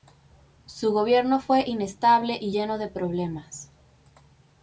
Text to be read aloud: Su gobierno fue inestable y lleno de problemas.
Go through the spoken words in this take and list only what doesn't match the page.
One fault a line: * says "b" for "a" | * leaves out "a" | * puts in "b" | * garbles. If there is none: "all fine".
all fine